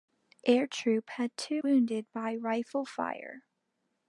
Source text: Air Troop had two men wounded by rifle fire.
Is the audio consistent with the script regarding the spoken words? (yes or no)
no